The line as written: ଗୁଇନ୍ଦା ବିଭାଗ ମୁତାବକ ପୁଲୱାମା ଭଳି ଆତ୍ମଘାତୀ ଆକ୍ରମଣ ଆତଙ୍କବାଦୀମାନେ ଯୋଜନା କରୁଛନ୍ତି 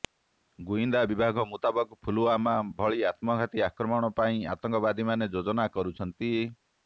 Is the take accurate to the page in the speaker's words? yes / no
no